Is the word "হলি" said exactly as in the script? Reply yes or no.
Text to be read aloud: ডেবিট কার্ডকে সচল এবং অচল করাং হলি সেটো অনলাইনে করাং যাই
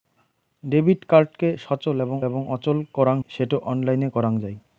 no